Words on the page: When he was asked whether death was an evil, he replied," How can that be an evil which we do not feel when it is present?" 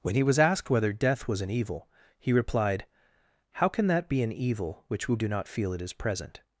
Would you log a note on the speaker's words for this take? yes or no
yes